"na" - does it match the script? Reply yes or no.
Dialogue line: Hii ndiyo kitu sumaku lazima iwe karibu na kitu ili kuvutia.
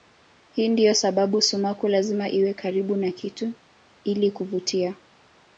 yes